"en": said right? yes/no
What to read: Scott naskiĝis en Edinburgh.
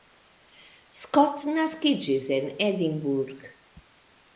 yes